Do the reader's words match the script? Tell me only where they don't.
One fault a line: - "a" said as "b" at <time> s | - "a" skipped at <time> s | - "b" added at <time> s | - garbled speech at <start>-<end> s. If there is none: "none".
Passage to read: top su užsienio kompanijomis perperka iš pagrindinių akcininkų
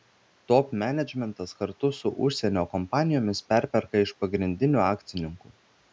- "menedžmentas kartu" added at 0.8 s